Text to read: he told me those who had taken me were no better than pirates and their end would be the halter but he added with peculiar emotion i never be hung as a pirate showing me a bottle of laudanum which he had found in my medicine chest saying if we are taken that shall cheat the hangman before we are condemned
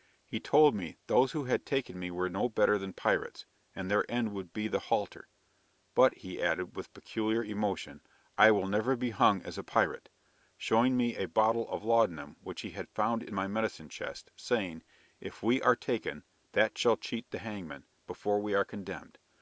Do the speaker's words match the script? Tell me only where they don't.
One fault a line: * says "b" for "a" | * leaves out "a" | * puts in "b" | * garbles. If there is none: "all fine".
* puts in "will"